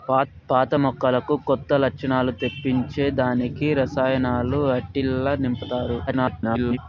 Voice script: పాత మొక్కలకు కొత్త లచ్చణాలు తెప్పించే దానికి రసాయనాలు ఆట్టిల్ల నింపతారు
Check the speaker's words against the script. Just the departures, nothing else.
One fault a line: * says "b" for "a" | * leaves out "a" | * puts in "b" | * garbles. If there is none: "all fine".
* garbles